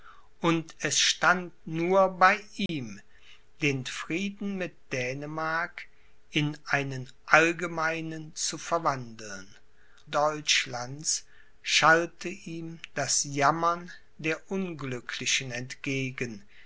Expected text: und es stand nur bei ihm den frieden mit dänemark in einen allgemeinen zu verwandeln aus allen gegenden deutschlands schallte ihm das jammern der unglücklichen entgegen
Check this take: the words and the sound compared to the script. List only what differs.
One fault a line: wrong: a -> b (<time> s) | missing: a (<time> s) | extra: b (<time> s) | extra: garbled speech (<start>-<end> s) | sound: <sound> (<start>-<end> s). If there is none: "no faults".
sound: dropout (2.7-2.7 s)
missing: aus allen gegenden (9.5 s)